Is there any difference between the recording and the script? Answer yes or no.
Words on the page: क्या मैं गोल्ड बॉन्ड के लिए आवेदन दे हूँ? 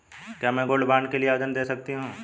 yes